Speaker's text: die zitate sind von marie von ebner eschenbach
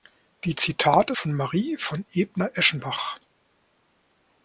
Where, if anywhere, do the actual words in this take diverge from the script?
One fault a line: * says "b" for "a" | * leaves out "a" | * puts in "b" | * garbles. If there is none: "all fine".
* leaves out "sind"